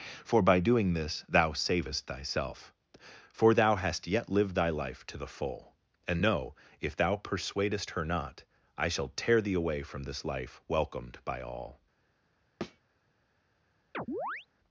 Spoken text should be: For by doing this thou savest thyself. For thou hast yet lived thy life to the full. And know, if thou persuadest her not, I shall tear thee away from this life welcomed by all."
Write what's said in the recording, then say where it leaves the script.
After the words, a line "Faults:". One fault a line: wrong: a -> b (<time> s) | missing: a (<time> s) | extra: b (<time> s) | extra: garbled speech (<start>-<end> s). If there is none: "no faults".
For by doing this thou savest thyself. For thou hast yet lived thy life to the full. And know, if thou persuadest her not, I shall tear thee away from this life welcomed by all."
Faults:
no faults